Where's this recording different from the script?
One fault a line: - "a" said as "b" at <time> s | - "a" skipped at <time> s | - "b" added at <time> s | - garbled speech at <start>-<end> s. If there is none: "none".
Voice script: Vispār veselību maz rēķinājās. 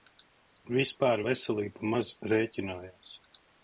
none